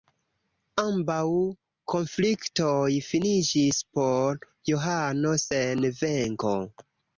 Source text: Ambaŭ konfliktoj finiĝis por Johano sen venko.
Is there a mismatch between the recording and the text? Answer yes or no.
no